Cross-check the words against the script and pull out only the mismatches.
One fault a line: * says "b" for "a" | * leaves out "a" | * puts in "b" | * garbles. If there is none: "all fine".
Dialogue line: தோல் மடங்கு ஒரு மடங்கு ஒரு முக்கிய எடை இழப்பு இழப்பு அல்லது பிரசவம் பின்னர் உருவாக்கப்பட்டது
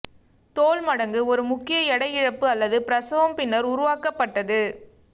* leaves out "மடங்கு ஒரு"
* leaves out "இழப்பு"